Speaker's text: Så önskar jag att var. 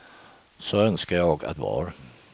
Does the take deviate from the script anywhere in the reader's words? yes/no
no